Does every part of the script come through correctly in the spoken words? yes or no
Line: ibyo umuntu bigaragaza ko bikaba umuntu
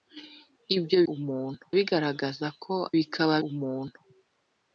yes